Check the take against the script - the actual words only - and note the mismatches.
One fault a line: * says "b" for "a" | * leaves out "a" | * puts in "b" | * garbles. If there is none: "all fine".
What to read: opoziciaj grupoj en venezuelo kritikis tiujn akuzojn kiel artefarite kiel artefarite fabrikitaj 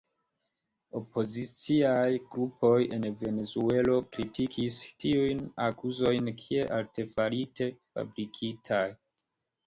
* leaves out "kiel artefarite"